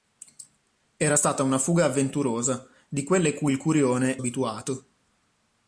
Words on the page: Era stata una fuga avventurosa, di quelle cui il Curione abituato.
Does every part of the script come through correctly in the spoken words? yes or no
yes